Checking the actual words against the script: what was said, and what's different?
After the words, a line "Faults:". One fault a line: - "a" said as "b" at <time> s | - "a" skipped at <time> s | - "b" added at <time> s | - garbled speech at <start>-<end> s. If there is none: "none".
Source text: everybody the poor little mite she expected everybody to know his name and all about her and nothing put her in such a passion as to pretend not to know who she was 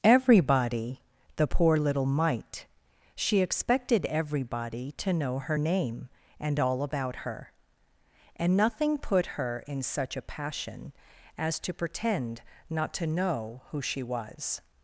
everybody the poor little mite she expected everybody to know her name and all about her and nothing put her in such a passion as to pretend not to know who she was
Faults:
- "his" said as "her" at 5.4 s